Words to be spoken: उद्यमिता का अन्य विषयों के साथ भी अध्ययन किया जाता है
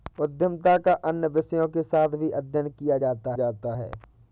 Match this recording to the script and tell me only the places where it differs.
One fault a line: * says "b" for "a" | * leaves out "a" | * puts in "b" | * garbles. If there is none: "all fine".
* puts in "जाता"